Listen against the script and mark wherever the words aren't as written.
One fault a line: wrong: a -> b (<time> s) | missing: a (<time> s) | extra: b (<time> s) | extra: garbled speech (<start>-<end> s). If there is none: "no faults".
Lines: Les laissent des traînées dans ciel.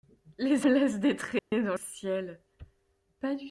no faults